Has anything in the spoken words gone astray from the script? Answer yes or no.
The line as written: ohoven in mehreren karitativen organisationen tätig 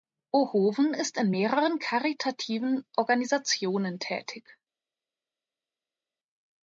yes